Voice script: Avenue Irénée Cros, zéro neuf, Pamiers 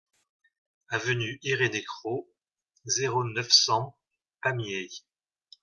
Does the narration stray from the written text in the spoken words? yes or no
yes